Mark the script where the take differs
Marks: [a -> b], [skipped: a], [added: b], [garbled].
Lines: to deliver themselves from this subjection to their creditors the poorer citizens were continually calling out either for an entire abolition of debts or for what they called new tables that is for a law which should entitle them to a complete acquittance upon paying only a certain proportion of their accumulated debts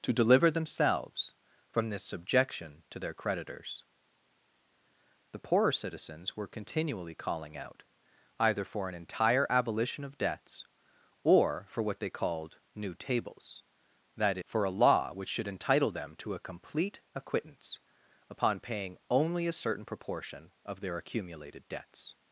to deliver themselves from this subjection to their creditors the poorer citizens were continually calling out either for an entire abolition of debts or for what they called new tables that [skipped: is] for a law which should entitle them to a complete acquittance upon paying only a certain proportion of their accumulated debts